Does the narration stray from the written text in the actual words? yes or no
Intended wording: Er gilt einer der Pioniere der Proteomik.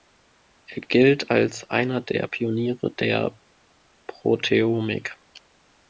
yes